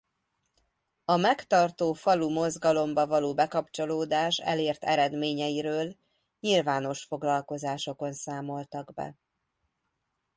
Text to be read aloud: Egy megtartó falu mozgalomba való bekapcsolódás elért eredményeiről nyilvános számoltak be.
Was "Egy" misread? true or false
true